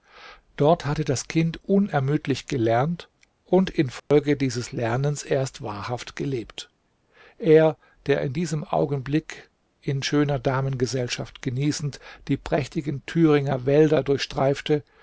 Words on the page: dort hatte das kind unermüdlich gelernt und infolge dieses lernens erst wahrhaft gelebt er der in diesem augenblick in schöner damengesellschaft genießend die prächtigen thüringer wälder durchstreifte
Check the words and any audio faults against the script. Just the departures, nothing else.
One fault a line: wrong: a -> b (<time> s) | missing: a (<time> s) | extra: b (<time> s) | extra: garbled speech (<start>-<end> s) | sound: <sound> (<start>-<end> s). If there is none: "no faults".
sound: dropout (4.0-4.1 s)